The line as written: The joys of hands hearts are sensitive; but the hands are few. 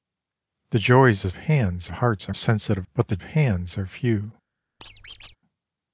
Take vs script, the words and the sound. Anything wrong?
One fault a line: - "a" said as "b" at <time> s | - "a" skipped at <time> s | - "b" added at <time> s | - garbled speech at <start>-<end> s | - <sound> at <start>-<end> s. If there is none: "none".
- squeak at 4.8-5.4 s